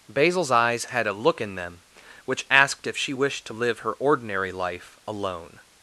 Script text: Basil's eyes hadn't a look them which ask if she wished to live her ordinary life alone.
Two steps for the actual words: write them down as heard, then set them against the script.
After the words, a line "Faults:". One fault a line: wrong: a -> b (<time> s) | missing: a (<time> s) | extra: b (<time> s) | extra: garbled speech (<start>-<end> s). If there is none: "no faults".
Basil's eyes had a look in them which asked if she wished to live her ordinary life alone.
Faults:
wrong: hadn't -> had (0.8 s)
extra: in (1.4 s)
wrong: ask -> asked (2.5 s)